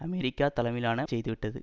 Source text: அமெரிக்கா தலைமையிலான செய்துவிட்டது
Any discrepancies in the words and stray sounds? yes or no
no